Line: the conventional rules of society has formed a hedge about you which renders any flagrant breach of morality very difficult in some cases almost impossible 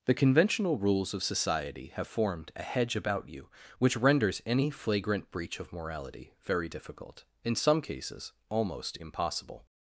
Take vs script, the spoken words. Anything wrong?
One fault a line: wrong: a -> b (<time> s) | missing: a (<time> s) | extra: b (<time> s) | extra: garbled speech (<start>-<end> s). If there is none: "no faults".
wrong: has -> have (1.9 s)